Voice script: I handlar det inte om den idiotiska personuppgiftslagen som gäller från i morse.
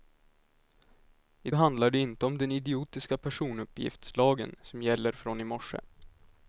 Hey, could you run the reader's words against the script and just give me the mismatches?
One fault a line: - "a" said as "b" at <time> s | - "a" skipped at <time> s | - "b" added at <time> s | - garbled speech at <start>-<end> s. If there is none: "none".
none